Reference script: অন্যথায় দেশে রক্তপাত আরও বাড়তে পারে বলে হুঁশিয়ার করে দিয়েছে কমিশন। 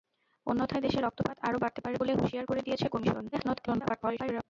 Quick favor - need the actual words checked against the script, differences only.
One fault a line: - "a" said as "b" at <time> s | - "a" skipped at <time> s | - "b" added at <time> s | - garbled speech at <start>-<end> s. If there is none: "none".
- garbled speech at 3.3-4.4 s